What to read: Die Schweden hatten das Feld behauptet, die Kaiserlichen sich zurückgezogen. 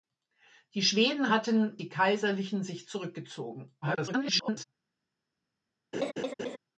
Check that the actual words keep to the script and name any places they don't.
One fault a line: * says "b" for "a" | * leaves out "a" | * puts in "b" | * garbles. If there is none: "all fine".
* leaves out "das Feld behauptet"
* garbles